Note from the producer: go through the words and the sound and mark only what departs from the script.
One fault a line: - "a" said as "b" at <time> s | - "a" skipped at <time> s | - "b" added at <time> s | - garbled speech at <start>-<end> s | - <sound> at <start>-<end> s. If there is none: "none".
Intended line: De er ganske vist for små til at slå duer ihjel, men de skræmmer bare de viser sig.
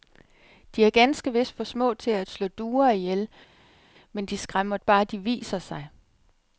none